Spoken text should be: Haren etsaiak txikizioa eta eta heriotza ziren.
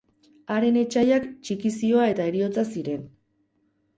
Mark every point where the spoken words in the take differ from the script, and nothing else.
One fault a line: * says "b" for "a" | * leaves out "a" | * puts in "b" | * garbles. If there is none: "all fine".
* leaves out "eta"